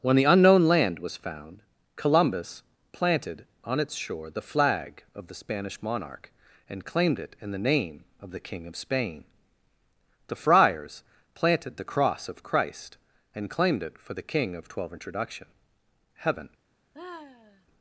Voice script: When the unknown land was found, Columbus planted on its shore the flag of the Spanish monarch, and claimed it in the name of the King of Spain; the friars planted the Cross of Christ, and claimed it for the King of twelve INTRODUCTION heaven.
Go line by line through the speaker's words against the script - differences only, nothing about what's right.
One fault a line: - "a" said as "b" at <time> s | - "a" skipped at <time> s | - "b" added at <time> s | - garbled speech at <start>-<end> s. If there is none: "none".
none